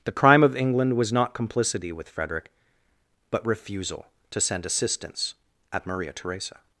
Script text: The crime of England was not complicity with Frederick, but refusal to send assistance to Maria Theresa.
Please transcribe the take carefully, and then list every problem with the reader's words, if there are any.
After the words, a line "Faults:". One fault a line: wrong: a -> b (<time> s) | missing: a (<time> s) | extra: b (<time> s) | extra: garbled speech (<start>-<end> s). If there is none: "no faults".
The crime of England was not complicity with Frederick, but refusal to send assistance at Maria Theresa.
Faults:
wrong: to -> at (5.7 s)